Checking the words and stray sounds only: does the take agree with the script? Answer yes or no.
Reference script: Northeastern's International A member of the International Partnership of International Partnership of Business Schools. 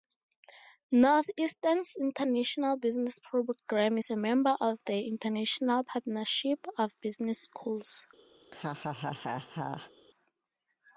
no